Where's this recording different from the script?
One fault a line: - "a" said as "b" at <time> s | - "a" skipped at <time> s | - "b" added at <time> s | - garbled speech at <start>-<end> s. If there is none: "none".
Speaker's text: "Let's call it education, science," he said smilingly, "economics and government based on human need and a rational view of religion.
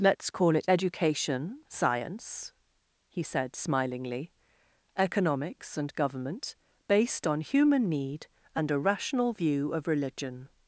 none